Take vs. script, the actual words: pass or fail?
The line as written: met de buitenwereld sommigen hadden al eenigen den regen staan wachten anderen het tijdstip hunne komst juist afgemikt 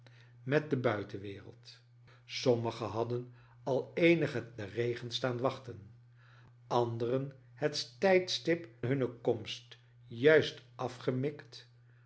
pass